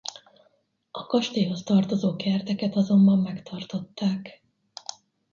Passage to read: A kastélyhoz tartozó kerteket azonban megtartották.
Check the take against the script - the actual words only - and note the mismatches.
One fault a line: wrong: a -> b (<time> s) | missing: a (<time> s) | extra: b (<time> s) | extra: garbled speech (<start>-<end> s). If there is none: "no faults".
no faults